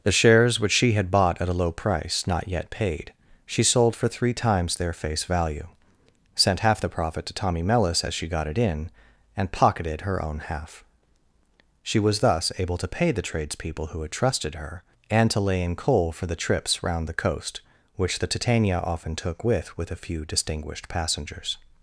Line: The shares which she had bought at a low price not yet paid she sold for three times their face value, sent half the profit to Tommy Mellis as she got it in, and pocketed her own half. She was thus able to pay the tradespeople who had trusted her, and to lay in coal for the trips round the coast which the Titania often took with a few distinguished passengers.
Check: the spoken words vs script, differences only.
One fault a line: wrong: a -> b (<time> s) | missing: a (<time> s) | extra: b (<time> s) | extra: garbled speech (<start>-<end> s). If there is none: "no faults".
extra: with (19.8 s)